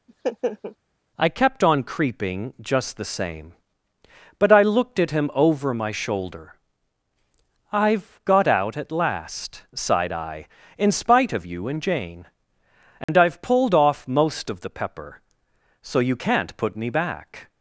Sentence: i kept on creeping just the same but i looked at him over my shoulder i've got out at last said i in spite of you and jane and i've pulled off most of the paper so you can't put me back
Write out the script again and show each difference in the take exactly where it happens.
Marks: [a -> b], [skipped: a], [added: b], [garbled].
i kept on creeping just the same but i looked at him over my shoulder i've got out at last [said -> sighed] i in spite of you and jane and i've pulled off most of the [paper -> pepper] so you can't put me back